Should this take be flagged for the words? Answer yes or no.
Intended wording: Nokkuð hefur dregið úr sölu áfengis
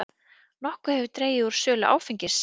no